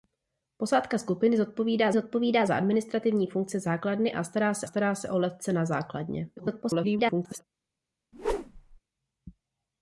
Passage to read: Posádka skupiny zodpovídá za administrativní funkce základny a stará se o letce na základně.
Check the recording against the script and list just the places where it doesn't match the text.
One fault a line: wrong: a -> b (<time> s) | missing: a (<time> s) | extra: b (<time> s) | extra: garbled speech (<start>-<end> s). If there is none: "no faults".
extra: zodpovídá (1.9 s)
extra: stará se (4.6 s)
extra: garbled speech (6.4-7.4 s)